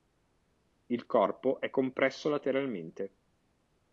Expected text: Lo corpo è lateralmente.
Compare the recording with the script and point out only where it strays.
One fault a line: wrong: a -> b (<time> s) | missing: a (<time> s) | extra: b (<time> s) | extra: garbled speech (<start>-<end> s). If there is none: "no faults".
wrong: Lo -> Il (0.9 s)
extra: compresso (1.7 s)